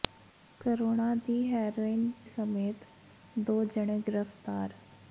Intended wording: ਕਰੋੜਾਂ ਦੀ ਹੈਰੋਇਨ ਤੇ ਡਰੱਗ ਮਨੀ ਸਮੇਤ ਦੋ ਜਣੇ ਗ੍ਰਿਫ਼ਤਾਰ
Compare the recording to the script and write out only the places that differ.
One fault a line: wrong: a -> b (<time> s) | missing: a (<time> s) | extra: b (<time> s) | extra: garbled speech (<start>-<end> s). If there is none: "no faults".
missing: ਤੇ ਡਰੱਗ ਮਨੀ (2.1 s)